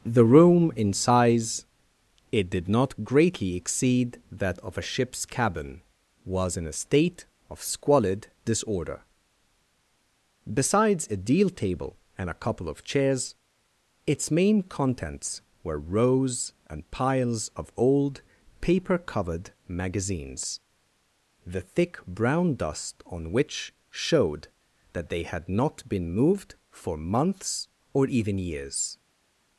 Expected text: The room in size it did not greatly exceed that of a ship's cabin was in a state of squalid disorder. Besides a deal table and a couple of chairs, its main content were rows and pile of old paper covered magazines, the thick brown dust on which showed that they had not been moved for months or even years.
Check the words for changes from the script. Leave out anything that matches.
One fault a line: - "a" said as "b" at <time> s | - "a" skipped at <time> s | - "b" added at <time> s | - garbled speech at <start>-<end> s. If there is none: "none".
- "content" said as "contents" at 14.6 s
- "pile" said as "piles" at 16.9 s